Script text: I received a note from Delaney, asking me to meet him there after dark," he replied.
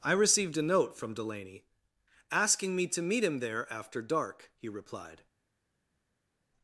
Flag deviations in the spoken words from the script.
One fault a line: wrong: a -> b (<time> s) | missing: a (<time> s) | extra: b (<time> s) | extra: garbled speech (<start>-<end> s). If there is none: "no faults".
no faults